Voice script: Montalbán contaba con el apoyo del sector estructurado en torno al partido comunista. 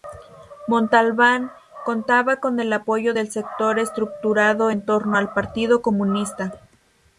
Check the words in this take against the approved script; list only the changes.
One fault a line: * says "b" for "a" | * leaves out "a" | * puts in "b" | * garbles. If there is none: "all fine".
all fine